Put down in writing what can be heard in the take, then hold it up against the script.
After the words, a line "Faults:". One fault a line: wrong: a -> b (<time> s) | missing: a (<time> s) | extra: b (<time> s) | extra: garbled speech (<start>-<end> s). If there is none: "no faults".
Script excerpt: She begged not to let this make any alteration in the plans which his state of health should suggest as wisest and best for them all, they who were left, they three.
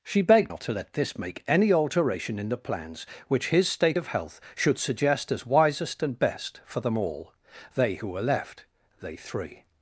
She begged not to let this make any alteration in the plans which his state of health should suggest as wisest and best for them all, they who were left, they three.
Faults:
no faults